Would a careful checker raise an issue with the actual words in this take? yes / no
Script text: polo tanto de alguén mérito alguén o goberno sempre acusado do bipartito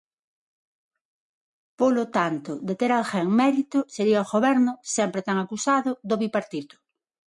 yes